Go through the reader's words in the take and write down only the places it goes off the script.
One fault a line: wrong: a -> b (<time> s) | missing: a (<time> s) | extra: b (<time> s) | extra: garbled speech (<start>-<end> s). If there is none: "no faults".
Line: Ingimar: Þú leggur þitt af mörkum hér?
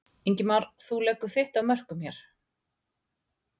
no faults